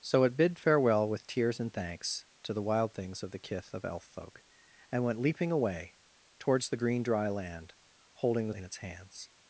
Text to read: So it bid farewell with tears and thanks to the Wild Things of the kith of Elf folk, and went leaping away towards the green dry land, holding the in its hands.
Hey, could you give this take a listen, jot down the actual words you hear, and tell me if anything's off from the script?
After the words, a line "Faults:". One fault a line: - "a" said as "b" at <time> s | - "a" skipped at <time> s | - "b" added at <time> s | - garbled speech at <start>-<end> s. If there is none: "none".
So it bid farewell with tears and thanks to the Wild Things of the kith of Elf folk, and went leaping away towards the green dry land, holding the in its hands.
Faults:
none